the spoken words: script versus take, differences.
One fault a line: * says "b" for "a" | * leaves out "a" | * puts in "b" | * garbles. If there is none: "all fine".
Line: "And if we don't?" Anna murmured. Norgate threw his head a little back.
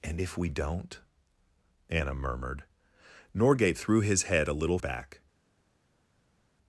all fine